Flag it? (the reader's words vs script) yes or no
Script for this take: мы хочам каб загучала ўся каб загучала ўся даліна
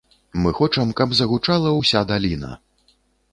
yes